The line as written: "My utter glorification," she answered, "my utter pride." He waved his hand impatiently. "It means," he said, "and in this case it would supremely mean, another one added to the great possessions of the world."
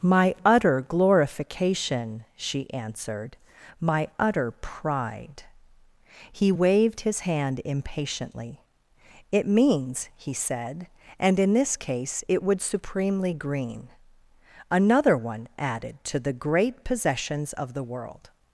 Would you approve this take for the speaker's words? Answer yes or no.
no